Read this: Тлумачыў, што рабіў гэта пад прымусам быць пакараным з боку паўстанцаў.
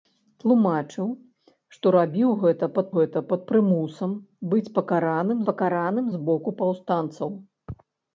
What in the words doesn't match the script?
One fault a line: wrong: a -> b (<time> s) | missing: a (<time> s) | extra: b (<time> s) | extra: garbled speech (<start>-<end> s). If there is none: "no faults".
extra: гэта пад (3.0 s)
extra: пакараным (5.5 s)